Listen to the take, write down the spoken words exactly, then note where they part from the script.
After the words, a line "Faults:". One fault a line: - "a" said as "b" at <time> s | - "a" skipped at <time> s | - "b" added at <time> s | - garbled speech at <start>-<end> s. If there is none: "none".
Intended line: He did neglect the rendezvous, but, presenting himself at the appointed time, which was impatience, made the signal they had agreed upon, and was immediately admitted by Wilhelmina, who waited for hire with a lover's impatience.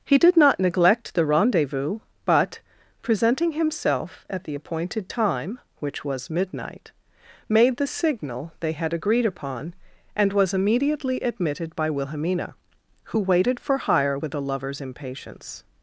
He did not neglect the rendezvous, but, presenting himself at the appointed time, which was midnight, made the signal they had agreed upon, and was immediately admitted by Wilhelmina, who waited for hire with a lover's impatience.
Faults:
- "not" added at 0.3 s
- "impatience" said as "midnight" at 6.3 s